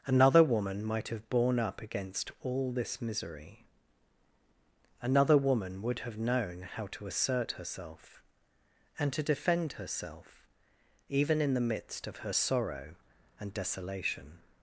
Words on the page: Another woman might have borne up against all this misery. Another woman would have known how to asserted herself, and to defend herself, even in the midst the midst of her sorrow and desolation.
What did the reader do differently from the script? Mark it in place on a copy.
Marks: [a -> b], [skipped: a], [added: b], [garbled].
Another woman might have borne up against all this misery. Another woman would have known how to [asserted -> assert] herself, and to defend herself, even in the midst [skipped: the midst] of her sorrow and desolation.